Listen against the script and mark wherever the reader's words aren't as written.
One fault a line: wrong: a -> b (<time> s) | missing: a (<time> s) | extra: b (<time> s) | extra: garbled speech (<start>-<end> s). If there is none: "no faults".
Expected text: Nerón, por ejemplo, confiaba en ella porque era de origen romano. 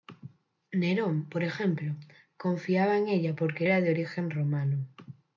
no faults